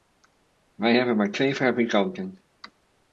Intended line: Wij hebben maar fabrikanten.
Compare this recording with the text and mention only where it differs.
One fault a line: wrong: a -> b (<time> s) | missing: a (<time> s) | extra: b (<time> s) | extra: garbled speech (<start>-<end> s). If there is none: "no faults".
extra: twee (1.3 s)